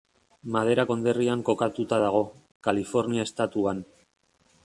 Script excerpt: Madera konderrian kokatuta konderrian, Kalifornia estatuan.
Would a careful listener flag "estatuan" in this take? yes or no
no